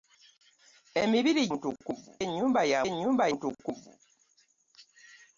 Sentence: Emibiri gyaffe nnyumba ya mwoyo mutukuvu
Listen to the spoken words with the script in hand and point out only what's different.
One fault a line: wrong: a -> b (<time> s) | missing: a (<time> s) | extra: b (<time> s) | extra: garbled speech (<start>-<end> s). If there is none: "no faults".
wrong: gyaffe -> mutukuvu (1.5 s)
wrong: mwoyo -> nnyumba (2.9 s)